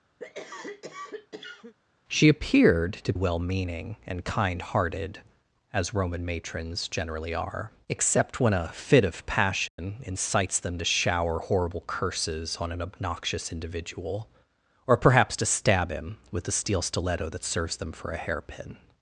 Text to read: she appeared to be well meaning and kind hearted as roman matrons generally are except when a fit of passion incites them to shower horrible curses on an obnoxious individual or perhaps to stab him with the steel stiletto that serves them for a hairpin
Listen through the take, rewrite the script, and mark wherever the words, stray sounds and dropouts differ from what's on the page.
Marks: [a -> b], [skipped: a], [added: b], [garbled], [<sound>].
[cough] she appeared to [skipped: be] well meaning and kind hearted as roman matrons generally are except when a fit of passion [dropout] incites them to shower horrible curses on an obnoxious individual or perhaps to stab him with the steel stiletto that serves them for a hairpin